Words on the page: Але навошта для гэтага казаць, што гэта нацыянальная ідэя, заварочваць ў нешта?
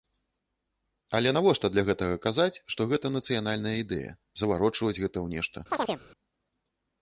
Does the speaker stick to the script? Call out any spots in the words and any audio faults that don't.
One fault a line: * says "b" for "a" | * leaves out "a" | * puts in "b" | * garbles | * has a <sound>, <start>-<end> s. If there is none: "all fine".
* puts in "гэта"
* has a chirp, 5.7-6.0 s